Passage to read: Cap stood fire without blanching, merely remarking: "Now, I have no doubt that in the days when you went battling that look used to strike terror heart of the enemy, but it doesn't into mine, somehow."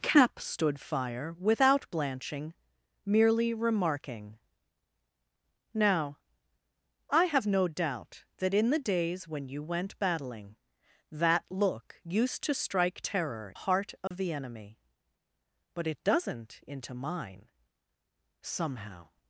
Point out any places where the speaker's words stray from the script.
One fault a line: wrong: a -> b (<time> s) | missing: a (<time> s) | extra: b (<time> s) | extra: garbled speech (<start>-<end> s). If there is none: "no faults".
no faults